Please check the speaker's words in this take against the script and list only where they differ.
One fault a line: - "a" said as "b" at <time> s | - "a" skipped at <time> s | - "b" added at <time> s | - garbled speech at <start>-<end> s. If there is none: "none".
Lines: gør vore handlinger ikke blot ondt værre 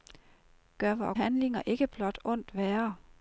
none